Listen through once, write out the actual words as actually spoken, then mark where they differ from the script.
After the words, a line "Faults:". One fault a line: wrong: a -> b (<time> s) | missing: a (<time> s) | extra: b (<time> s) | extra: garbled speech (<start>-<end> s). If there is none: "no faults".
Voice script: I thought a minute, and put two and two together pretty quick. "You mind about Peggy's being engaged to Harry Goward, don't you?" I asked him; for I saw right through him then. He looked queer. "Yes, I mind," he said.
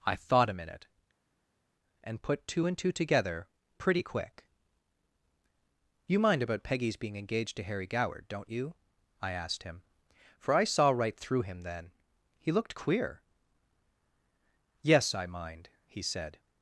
I thought a minute, and put two and two together pretty quick. "You mind about Peggy's being engaged to Harry Goward, don't you?" I asked him; for I saw right through him then. He looked queer. "Yes, I mind," he said.
Faults:
no faults